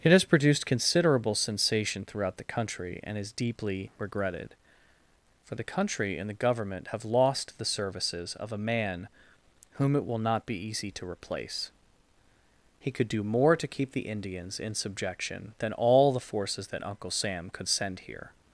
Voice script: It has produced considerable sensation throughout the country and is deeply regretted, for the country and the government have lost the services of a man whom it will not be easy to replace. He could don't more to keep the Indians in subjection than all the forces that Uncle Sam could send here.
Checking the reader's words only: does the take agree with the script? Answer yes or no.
no